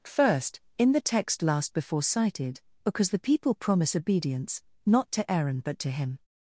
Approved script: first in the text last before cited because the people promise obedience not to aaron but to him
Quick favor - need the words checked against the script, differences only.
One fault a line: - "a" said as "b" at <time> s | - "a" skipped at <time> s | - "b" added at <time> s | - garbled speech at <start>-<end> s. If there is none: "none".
none